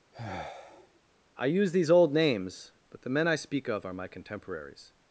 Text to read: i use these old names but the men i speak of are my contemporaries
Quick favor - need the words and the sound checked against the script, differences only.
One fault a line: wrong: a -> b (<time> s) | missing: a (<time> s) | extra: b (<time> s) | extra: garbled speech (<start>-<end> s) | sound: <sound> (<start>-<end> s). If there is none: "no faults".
sound: sigh (0.1-1.0 s)